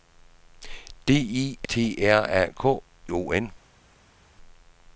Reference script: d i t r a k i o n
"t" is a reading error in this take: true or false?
false